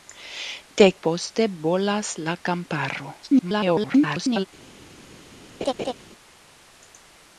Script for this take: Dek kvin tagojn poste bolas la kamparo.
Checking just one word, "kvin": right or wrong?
wrong